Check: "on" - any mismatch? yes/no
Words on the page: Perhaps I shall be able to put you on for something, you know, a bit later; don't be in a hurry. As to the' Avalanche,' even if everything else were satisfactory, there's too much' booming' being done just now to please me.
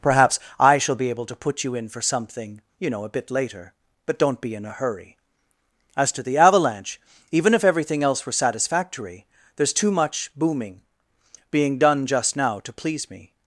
yes